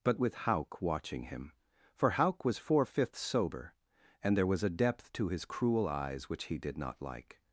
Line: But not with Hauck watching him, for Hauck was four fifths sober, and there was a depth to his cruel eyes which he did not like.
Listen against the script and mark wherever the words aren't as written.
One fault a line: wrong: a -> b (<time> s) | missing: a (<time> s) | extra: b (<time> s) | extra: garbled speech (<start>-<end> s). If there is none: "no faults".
missing: not (0.2 s)